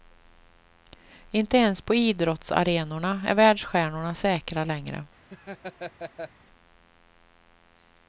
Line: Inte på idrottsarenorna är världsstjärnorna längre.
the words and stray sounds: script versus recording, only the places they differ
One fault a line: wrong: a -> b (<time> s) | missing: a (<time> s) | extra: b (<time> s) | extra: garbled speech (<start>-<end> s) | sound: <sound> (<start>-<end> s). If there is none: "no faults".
extra: ens (1.6 s)
extra: säkra (4.1 s)
sound: laugh (5.3-6.3 s)